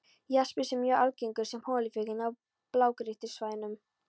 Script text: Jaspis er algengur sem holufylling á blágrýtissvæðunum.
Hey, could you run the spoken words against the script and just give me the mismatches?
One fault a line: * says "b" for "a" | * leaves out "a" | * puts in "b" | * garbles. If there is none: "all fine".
* puts in "mjög"